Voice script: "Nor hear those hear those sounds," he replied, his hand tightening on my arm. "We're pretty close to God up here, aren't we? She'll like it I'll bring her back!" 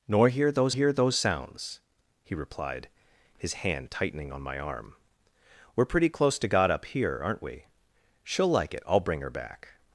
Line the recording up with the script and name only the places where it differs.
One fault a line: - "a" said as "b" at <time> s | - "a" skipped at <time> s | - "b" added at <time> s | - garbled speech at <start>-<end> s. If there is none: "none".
none